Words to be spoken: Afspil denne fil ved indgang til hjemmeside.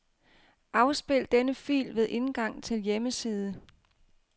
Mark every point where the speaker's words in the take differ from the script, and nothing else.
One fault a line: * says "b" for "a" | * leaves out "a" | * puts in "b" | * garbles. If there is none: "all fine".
all fine